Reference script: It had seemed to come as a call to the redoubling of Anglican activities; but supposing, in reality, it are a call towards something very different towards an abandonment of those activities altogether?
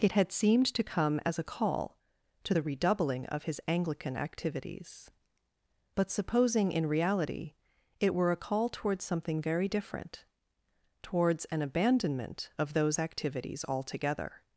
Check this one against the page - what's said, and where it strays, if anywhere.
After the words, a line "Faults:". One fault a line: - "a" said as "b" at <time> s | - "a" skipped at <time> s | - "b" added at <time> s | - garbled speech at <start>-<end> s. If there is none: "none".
It had seemed to come as a call to the redoubling of his Anglican activities; but supposing, in reality, it were a call towards something very different towards an abandonment of those activities altogether?
Faults:
- "his" added at 3.4 s
- "are" said as "were" at 8.1 s